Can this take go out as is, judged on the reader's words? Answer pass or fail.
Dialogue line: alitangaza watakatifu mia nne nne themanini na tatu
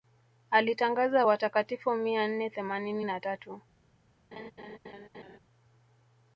fail